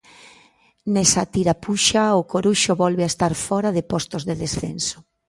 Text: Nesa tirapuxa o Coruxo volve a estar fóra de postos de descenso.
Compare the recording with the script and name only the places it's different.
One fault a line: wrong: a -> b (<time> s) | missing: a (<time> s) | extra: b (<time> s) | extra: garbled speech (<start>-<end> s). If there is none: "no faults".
no faults